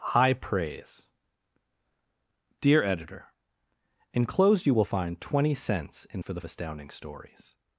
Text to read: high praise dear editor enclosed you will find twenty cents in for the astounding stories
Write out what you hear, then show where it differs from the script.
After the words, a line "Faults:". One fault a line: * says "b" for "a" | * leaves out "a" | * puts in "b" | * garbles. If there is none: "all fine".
high praise dear editor enclosed you will find twenty cents in for the astounding stories
Faults:
all fine